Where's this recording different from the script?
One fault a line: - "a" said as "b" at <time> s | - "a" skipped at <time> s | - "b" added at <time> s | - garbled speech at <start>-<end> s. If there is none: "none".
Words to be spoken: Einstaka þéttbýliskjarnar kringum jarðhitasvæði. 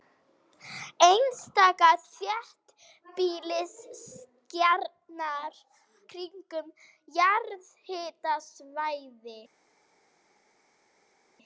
none